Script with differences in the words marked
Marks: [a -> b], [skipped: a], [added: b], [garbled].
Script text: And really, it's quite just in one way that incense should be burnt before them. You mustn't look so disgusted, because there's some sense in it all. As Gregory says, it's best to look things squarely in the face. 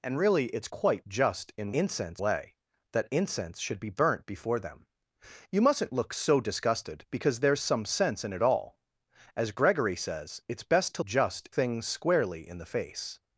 And really, it's quite just in [one -> incense] way that incense should be burnt before them. You mustn't look so disgusted, because there's some sense in it all. As Gregory says, it's best to [look -> just] things squarely in the face.